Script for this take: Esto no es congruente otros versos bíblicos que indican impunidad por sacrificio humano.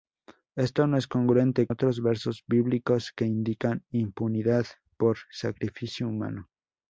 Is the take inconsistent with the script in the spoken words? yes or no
no